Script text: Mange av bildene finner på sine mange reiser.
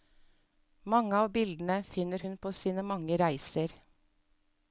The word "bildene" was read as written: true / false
true